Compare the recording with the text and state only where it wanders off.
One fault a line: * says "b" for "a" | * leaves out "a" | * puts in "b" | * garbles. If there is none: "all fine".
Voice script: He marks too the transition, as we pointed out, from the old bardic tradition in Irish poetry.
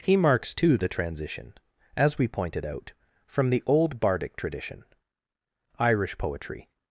* leaves out "in"